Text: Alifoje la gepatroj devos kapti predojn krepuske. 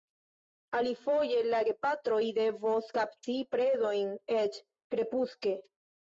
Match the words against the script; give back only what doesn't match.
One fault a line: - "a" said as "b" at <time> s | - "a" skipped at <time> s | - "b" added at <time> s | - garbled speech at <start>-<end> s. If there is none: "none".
- "eĉ" added at 4.4 s